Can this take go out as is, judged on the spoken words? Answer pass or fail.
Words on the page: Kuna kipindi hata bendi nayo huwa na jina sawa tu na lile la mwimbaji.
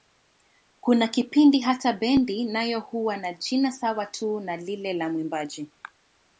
pass